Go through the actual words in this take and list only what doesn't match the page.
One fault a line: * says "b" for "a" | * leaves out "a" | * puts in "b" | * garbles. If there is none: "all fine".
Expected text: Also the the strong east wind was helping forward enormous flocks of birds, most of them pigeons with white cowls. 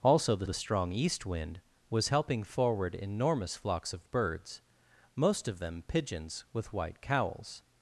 all fine